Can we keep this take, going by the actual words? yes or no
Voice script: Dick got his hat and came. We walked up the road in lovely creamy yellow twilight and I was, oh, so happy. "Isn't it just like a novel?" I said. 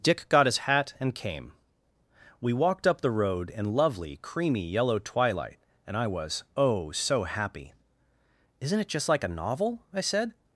yes